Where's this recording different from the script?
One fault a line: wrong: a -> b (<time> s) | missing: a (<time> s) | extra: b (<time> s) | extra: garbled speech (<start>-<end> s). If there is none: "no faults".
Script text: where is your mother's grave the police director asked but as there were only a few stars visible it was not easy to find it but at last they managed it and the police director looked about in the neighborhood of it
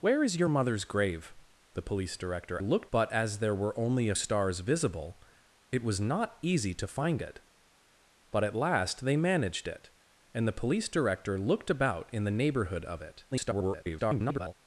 wrong: asked -> looked (2.6 s)
missing: few (4.1 s)
extra: garbled speech (13.3-14.5 s)